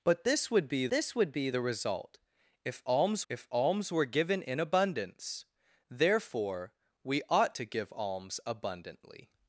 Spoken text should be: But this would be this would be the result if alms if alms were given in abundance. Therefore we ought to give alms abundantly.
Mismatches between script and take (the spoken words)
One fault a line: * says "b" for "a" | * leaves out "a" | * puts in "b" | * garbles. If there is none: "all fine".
all fine